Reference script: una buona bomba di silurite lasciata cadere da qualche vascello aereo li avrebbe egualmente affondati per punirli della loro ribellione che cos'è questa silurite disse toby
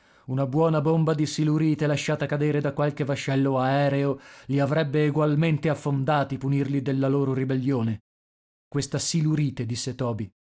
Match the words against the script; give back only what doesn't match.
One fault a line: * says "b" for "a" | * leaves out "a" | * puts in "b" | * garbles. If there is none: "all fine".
* leaves out "per"
* leaves out "che cos'è"